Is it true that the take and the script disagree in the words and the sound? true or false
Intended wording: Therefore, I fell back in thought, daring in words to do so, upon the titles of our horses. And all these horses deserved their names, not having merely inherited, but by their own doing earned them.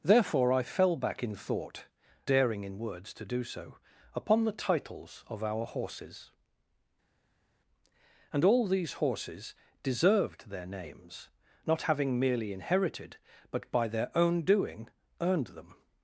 false